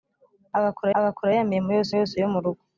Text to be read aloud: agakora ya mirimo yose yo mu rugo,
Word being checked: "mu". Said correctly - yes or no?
yes